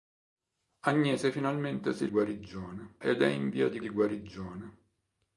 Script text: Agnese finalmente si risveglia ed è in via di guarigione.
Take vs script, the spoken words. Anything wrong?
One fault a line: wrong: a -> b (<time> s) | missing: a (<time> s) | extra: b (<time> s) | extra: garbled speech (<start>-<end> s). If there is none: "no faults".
wrong: risveglia -> guarigione (2.1 s)
extra: di (3.8 s)